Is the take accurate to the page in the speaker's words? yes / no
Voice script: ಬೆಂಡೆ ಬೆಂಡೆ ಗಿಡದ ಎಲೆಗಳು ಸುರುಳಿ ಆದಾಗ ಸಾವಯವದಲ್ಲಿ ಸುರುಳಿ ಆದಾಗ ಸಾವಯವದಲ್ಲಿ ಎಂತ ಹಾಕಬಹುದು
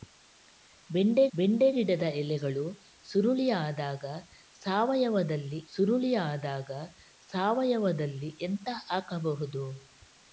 yes